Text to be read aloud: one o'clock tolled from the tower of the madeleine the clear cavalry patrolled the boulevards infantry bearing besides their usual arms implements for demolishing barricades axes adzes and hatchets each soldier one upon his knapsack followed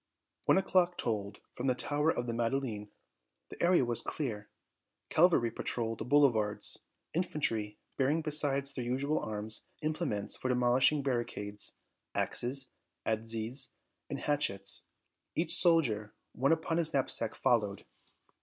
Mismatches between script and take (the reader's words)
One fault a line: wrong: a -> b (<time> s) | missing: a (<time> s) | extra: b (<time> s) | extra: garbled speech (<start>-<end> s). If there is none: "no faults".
extra: area was (3.6 s)